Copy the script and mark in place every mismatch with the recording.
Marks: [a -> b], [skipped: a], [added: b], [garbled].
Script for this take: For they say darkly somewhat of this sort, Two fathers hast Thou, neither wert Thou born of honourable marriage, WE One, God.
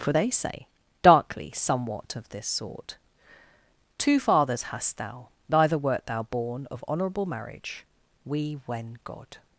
For they say darkly somewhat of this sort, Two fathers hast Thou, neither wert Thou born of honourable marriage, WE [One, -> When] God.